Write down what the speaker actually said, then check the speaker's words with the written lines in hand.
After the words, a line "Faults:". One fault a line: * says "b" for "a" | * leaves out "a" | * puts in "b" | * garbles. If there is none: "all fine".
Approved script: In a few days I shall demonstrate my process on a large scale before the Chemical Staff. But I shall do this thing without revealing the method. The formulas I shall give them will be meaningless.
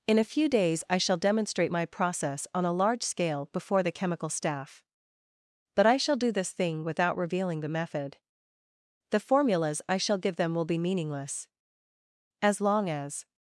In a few days I shall demonstrate my process on a large scale before the Chemical Staff. But I shall do this thing without revealing the method. The formulas I shall give them will be meaningless. As long as
Faults:
* puts in "As long as"